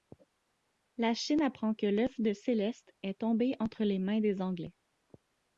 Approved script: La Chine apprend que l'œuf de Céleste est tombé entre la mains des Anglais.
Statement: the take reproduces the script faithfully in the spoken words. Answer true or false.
false